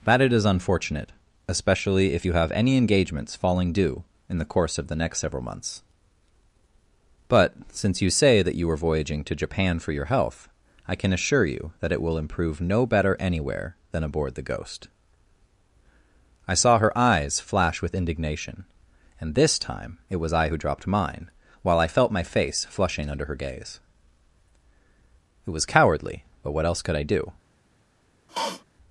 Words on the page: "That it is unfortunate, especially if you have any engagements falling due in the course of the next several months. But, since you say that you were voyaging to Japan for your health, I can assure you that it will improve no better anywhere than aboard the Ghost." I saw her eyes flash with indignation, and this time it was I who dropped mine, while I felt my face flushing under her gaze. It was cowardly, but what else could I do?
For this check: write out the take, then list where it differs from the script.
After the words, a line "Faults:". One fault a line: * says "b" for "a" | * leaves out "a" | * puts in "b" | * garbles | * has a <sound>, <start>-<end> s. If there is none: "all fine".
"That it is unfortunate, especially if you have any engagements falling due in the course of the next several months. But, since you say that you are voyaging to Japan for your health, I can assure you that it will improve no better anywhere than aboard the Ghost." I saw her eyes flash with indignation, and this time it was I who dropped mine, while I felt my face flushing under her gaze. It was cowardly, but what else could I do?
Faults:
* says "are" for "were"
* has a sniff, 28.3-28.6 s